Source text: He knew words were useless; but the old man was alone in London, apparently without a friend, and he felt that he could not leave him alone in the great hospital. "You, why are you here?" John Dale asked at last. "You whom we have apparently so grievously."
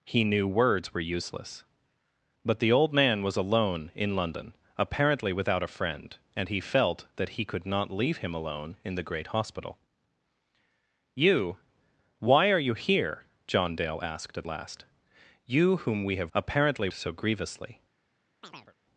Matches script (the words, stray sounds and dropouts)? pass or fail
fail